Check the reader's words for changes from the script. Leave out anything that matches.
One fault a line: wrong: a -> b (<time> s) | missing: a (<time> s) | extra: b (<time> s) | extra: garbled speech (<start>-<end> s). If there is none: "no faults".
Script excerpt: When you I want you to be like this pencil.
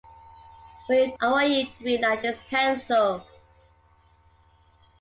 no faults